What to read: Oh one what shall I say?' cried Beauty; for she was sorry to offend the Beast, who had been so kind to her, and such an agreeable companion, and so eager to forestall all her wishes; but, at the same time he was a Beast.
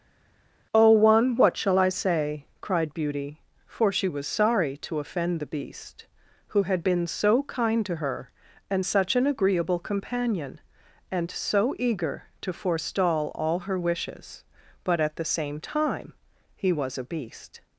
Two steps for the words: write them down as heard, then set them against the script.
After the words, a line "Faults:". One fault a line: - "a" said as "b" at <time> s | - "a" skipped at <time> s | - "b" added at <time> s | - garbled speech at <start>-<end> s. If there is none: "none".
Oh one what shall I say?' cried Beauty; for she was sorry to offend the Beast, who had been so kind to her, and such an agreeable companion, and so eager to forestall all her wishes; but, at the same time he was a Beast.
Faults:
none